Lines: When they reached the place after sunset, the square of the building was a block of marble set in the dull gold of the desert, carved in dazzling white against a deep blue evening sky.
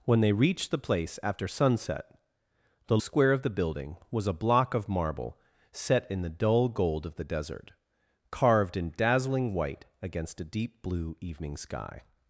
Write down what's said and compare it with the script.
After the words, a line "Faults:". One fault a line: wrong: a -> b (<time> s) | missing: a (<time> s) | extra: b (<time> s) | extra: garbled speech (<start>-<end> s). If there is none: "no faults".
When they reached the place after sunset, the square of the building was a block of marble set in the dull gold of the desert, carved in dazzling white against a deep blue evening sky.
Faults:
no faults